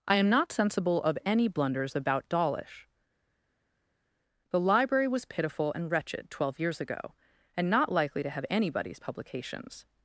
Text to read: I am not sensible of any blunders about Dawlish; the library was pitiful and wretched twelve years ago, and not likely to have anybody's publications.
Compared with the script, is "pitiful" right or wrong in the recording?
right